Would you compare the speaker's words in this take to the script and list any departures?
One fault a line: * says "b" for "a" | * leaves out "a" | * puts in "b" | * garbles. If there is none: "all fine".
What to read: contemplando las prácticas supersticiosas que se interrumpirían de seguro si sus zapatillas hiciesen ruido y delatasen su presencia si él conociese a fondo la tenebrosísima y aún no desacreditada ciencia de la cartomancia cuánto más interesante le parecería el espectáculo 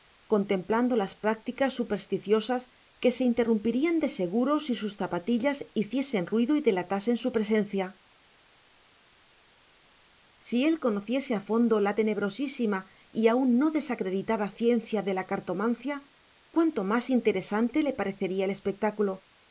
all fine